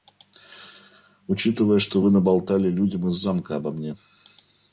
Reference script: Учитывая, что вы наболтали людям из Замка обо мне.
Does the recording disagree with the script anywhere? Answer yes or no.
no